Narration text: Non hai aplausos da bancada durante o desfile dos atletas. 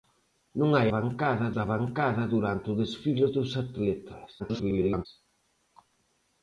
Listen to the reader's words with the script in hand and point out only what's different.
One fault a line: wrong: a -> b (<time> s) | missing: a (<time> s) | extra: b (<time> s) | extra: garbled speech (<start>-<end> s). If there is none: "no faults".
wrong: aplausos -> bancada (1.0 s)
extra: garbled speech (4.4-5.1 s)